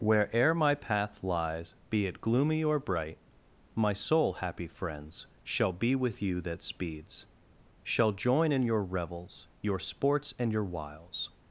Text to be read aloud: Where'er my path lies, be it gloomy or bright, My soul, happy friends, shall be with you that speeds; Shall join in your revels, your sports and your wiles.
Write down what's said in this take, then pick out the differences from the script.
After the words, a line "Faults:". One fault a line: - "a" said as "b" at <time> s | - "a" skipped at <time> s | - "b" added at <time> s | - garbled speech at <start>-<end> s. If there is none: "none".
Where'er my path lies, be it gloomy or bright, My soul, happy friends, shall be with you that speeds; Shall join in your revels, your sports and your wiles.
Faults:
none